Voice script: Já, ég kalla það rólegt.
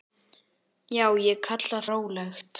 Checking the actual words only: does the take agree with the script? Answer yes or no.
no